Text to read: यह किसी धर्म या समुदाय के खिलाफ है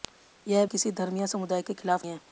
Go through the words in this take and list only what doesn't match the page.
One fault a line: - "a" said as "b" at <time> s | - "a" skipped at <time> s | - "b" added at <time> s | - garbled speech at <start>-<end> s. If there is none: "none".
none